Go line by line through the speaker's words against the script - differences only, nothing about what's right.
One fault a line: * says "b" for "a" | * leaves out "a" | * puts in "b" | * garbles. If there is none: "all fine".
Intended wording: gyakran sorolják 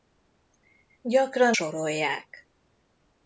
all fine